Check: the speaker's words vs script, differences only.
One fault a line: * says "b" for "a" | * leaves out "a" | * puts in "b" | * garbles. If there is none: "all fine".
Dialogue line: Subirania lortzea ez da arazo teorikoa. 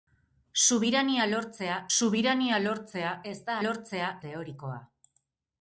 * puts in "subirania lortzea"
* says "lortzea" for "arazo"